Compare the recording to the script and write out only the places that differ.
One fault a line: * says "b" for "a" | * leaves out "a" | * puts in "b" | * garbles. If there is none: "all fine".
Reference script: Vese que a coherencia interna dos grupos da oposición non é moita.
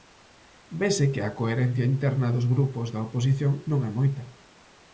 all fine